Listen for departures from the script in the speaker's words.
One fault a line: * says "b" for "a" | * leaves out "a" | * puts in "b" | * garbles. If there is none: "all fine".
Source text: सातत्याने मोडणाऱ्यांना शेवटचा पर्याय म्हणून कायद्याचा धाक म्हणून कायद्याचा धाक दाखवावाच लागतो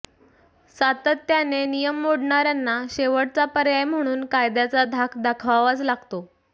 * puts in "नियम"
* leaves out "म्हणून कायद्याचा धाक"